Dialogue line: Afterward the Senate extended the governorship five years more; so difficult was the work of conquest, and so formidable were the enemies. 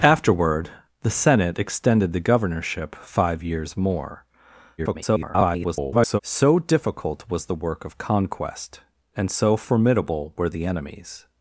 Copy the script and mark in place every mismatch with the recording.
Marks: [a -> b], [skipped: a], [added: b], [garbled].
Afterward the Senate extended the governorship five years more; [garbled] so difficult was the work of conquest, and so formidable were the enemies.